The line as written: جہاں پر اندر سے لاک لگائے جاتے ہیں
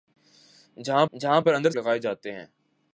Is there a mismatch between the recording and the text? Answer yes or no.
yes